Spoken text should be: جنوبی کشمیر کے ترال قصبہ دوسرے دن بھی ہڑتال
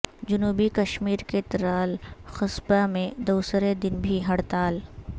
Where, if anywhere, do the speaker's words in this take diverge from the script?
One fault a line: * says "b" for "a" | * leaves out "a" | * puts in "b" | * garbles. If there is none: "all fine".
* puts in "میں"